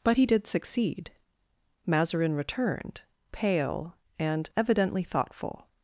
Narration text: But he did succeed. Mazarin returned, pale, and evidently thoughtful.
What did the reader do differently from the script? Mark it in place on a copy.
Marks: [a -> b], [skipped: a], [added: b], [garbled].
But he did succeed. Mazarin returned, pale, and evidently thoughtful.